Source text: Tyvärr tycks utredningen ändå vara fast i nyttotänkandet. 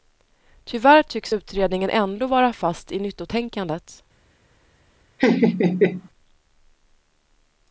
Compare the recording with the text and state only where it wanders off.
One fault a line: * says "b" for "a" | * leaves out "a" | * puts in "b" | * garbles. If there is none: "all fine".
all fine